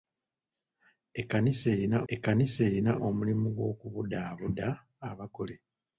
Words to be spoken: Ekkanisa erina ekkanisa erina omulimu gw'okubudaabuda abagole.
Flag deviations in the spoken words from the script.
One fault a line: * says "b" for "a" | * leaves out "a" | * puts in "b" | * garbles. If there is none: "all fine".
all fine